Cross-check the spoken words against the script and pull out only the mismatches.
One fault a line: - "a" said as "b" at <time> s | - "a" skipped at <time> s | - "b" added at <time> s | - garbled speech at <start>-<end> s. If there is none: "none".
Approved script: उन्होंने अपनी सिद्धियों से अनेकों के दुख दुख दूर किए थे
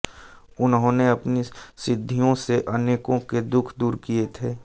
- "दुख" skipped at 3.7 s